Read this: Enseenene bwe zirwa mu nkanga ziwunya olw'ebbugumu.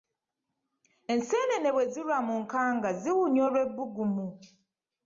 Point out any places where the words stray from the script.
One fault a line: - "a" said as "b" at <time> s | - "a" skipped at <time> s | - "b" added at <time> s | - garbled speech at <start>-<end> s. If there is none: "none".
none